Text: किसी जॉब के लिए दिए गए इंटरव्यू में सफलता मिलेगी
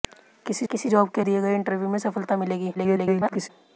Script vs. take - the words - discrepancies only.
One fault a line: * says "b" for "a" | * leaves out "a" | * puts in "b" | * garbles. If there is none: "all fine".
* puts in "किसी"
* leaves out "लिए"
* garbles